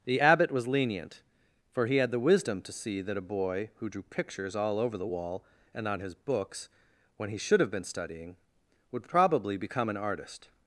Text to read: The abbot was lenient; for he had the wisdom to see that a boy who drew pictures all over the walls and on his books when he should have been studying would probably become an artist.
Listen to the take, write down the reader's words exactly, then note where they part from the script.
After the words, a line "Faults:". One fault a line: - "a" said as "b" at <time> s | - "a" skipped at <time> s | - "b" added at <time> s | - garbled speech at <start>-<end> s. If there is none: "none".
The abbot was lenient; for he had the wisdom to see that a boy who drew pictures all over the wall and on his books when he should have been studying would probably become an artist.
Faults:
- "walls" said as "wall" at 5.1 s